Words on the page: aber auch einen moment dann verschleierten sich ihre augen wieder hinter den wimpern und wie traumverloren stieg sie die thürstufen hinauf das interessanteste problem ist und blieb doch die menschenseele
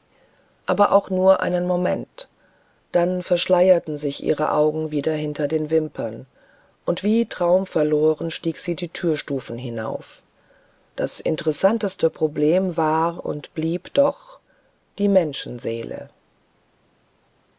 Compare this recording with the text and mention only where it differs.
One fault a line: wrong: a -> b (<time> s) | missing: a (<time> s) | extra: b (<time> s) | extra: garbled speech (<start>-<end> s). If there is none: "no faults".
extra: nur (1.1 s)
wrong: ist -> war (12.8 s)